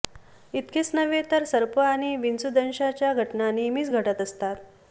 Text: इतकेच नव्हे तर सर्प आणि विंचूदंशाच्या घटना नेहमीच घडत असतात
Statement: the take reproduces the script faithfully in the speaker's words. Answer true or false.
true